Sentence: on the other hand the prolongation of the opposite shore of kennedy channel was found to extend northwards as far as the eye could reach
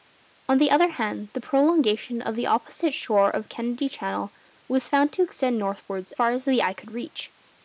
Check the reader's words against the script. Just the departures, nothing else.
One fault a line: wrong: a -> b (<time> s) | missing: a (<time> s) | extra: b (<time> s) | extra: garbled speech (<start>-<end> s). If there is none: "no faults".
missing: as (6.1 s)